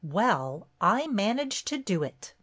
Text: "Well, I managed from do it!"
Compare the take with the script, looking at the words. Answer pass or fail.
fail